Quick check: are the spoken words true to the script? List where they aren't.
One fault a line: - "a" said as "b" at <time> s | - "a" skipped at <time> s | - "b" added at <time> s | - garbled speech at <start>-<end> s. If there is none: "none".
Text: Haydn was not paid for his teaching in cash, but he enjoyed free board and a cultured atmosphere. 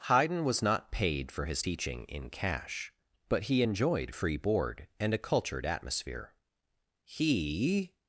- "He" added at 7.0 s